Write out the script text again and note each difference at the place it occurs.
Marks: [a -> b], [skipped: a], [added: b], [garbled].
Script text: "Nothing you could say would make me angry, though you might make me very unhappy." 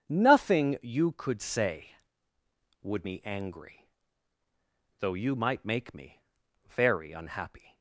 "Nothing you could say would [skipped: make] me angry, though you might make me very unhappy."